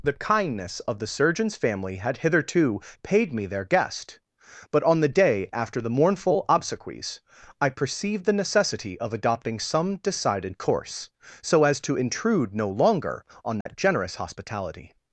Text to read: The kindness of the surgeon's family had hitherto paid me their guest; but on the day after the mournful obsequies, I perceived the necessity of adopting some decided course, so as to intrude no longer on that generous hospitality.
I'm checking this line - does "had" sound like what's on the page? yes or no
yes